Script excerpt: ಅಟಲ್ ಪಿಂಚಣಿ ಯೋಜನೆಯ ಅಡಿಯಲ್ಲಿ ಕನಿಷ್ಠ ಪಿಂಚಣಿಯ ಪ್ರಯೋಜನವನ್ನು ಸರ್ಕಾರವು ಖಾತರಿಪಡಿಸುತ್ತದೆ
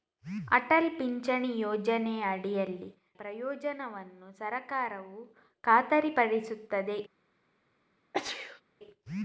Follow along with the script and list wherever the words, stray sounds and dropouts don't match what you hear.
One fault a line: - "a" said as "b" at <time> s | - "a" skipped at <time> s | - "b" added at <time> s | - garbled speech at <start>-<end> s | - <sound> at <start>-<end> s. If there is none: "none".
- "ಕನಿಷ್ಠ ಪಿಂಚಣಿಯ" skipped at 2.9 s
- sneeze at 8.1-8.6 s